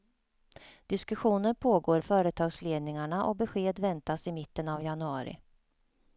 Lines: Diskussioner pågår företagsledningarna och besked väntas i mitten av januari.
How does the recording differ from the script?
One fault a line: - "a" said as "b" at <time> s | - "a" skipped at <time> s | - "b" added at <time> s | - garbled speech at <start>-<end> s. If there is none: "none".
none